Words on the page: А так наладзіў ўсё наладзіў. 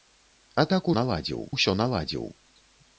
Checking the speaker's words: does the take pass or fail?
pass